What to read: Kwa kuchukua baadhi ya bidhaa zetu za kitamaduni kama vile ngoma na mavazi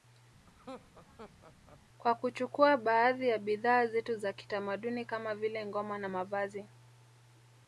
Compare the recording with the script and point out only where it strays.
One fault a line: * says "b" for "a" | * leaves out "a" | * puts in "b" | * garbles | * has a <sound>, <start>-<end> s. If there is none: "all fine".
* has a laugh, 0.5-1.8 s